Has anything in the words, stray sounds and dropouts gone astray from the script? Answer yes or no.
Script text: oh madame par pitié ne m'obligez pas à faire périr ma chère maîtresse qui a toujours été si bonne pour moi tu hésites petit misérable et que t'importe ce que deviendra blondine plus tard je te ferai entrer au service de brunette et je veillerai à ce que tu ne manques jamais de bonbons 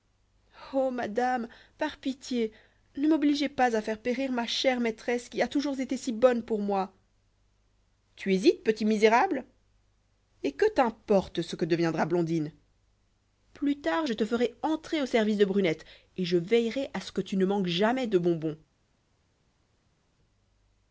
no